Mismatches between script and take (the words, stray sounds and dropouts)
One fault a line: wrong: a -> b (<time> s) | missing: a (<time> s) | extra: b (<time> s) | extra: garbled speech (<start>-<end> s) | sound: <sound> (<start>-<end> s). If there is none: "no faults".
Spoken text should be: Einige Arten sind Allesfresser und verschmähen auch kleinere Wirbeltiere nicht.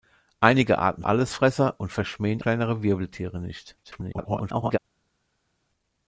missing: sind (1.0 s)
missing: auch (2.4 s)
extra: garbled speech (3.8-4.8 s)